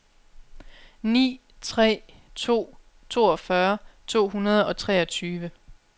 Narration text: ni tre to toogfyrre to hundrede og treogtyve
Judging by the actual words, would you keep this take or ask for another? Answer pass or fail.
pass